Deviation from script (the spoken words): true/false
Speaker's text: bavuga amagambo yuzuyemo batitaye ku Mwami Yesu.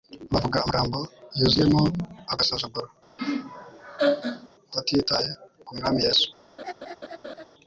true